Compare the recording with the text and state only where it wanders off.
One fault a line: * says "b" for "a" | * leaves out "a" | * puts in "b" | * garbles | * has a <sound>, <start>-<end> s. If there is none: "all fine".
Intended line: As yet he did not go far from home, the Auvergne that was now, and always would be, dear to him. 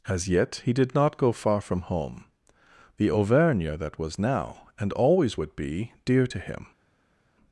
all fine